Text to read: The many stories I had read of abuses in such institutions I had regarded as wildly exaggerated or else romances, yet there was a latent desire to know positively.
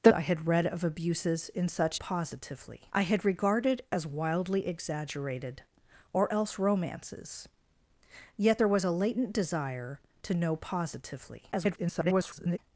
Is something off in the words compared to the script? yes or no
yes